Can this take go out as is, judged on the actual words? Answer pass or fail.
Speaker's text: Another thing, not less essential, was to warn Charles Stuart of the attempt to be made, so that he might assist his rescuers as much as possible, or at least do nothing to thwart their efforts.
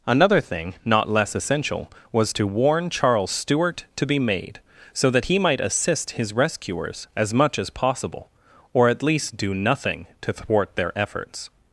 fail